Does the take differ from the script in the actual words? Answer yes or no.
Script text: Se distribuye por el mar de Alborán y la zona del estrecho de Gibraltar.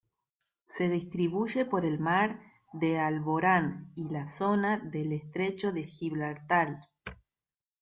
no